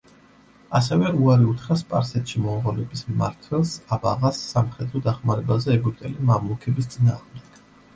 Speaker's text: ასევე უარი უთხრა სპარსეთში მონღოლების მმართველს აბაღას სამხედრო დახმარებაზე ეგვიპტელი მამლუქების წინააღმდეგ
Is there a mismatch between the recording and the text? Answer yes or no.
no